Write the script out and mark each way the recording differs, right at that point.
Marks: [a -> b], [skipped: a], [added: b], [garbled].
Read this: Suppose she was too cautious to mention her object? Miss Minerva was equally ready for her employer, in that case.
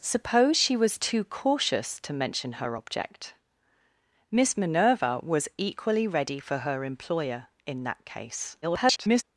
Suppose she was too cautious to mention her object? Miss Minerva was equally ready for her employer, in that case. [garbled]